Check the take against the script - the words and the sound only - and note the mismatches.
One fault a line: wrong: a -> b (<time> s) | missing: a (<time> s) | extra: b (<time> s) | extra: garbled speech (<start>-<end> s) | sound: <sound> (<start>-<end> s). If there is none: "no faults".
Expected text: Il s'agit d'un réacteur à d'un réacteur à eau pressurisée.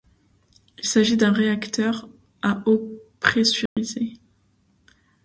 missing: d'un réacteur à (2.6 s)
sound: dropout (3.7-3.8 s)